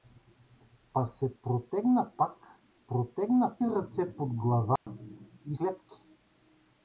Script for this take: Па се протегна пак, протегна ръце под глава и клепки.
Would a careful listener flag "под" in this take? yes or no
no